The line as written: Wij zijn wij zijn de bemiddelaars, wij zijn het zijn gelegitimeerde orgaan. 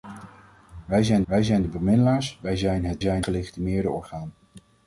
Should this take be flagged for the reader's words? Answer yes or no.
no